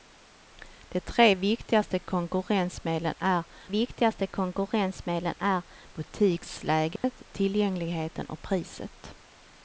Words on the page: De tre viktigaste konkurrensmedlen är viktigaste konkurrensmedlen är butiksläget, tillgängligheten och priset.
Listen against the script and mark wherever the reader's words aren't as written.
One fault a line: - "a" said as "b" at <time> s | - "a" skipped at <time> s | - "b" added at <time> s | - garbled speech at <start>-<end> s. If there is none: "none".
none